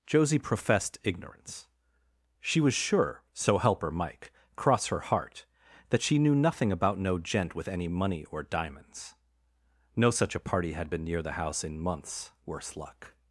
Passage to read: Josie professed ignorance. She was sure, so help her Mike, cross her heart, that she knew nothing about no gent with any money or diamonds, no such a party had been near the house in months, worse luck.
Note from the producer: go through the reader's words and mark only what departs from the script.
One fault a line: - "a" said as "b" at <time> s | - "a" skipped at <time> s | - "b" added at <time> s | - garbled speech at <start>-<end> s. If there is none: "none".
none